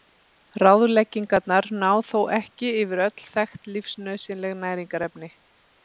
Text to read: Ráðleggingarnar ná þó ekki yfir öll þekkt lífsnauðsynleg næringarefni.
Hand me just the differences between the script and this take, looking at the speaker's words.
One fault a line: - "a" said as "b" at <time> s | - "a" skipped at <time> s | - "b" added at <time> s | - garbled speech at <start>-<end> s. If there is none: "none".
none